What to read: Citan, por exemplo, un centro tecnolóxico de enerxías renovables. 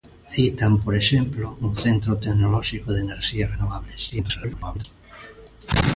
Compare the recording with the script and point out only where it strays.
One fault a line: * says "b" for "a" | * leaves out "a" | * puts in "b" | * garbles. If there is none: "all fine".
* garbles